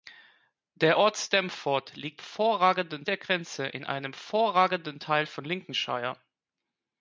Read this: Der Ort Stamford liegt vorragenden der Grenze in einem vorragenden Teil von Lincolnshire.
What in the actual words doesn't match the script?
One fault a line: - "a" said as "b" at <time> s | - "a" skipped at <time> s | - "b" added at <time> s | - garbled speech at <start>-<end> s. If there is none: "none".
none